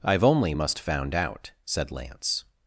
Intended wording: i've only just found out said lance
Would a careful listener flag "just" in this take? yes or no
yes